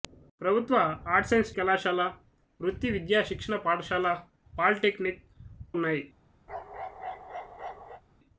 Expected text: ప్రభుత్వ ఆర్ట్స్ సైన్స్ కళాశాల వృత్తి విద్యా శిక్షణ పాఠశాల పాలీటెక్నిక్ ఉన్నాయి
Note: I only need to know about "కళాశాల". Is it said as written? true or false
true